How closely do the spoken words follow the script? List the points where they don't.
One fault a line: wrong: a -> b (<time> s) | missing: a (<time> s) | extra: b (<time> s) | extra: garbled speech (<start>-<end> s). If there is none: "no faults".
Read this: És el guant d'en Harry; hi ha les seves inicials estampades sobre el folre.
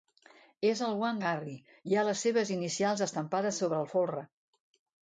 missing: d'en (1.2 s)